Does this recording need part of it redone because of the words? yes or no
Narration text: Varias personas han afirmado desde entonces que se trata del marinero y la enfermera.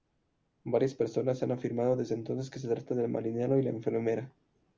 no